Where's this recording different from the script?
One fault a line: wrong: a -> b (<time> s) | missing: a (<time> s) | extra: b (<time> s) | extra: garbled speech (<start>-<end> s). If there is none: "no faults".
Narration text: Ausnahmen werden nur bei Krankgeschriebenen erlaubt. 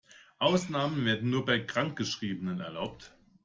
no faults